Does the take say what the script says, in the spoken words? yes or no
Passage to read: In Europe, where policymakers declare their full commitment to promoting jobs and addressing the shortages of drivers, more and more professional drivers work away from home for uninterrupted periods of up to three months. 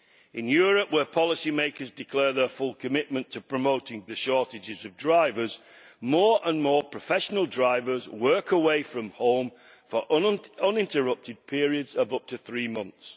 no